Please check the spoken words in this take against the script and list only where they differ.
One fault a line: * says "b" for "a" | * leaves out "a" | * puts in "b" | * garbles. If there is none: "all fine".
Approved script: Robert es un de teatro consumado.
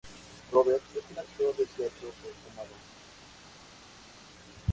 * puts in "actor"